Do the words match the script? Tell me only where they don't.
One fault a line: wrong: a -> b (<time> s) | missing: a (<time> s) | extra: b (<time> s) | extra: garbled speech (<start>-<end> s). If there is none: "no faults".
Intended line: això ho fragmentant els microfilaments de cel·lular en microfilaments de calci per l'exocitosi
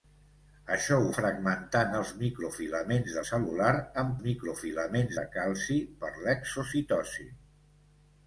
no faults